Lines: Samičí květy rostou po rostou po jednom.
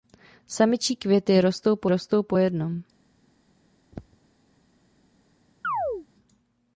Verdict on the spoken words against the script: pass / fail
pass